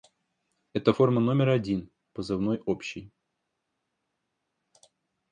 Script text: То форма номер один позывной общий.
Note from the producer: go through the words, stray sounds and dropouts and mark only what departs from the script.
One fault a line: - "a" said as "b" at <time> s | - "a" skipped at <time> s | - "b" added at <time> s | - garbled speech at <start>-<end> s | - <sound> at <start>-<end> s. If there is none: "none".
- "То" said as "Это" at 0.7 s